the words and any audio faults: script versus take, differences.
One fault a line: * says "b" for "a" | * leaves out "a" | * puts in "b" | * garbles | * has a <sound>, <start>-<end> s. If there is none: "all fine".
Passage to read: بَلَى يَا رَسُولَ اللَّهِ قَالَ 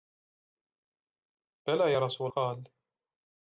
* leaves out "اللَّهِ"